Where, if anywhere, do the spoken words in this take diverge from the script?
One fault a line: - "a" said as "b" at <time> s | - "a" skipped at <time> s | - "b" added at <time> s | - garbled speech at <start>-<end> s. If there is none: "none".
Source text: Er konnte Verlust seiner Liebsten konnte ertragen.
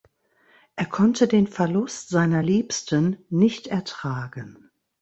- "den" added at 1.3 s
- "konnte" said as "nicht" at 3.3 s